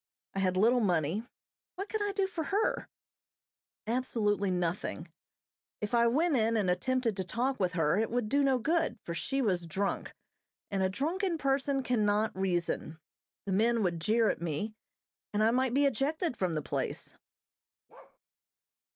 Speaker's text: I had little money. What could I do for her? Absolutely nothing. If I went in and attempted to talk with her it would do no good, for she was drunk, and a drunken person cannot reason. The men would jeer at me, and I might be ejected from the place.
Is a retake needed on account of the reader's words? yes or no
no